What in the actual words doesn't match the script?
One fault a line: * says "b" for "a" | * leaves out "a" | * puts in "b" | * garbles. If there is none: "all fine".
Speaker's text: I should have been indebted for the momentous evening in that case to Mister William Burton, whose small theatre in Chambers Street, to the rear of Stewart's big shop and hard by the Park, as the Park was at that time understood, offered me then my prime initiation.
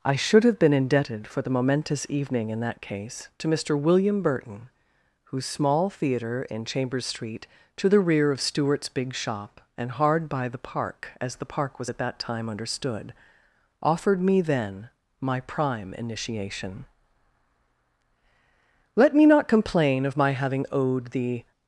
* puts in "Let me not complain of my having owed the"